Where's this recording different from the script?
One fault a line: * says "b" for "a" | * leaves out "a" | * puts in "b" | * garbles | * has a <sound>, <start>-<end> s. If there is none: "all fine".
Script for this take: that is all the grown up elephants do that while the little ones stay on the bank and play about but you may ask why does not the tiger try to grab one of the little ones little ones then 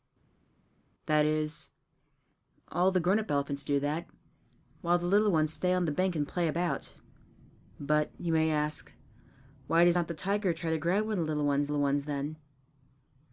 all fine